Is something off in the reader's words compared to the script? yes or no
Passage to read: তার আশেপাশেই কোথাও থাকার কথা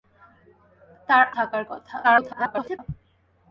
yes